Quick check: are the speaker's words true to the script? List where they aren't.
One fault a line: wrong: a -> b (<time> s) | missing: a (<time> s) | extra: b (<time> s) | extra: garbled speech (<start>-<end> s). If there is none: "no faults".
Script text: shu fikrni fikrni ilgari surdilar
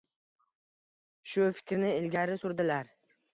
missing: fikrni (1.9 s)